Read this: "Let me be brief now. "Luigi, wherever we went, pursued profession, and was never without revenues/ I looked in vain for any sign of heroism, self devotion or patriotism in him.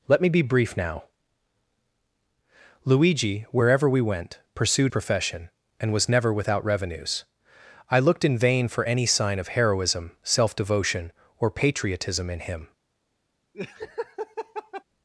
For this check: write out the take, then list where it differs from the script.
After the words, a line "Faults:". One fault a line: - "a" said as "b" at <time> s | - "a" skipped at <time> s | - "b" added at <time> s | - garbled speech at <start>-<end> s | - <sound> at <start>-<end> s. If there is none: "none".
"Let me be brief now. "Luigi, wherever we went, pursued profession, and was never without revenues/ I looked in vain for any sign of heroism, self devotion or patriotism in him.
Faults:
- laugh at 13.5-14.8 s